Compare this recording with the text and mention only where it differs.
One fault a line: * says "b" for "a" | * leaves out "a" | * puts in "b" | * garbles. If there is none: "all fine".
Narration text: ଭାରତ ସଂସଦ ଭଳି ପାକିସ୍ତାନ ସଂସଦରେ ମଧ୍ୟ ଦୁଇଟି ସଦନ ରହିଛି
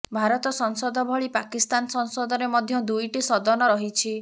all fine